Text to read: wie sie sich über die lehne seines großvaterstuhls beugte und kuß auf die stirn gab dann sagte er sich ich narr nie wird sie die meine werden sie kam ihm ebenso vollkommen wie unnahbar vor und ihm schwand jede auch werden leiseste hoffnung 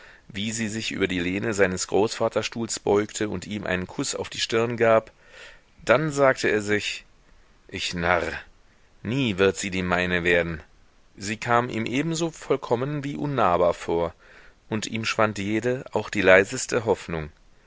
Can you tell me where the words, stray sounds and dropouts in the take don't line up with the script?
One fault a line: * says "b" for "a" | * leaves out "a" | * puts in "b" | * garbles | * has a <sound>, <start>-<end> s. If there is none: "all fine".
* puts in "ihm einen"
* says "die" for "werden"